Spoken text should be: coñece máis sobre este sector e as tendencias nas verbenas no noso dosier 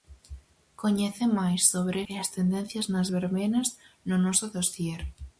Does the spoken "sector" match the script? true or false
false